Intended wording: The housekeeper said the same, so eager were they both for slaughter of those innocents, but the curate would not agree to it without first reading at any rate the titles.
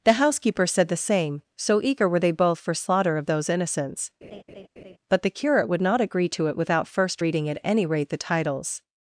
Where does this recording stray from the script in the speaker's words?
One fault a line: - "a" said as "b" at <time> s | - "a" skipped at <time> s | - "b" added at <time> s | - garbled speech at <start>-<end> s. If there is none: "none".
none